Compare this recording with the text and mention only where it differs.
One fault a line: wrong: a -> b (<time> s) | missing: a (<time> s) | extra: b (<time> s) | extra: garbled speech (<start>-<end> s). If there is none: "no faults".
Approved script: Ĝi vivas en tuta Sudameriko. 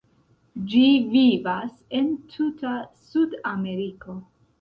no faults